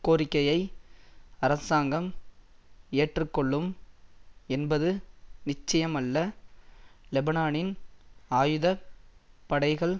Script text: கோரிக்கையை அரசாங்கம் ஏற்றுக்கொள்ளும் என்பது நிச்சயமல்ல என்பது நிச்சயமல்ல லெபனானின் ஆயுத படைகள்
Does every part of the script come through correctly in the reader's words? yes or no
no